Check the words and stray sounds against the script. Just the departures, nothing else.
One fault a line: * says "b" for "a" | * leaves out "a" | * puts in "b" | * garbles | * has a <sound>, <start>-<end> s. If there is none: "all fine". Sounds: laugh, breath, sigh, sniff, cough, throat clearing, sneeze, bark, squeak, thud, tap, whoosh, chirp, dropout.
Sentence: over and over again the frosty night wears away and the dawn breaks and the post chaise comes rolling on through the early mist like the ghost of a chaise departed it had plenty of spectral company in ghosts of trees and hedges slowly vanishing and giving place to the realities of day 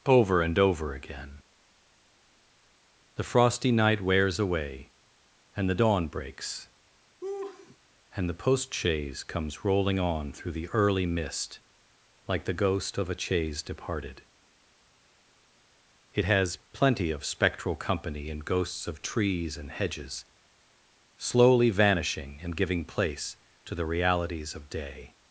* has a laugh, 7.2-7.8 s
* says "has" for "had"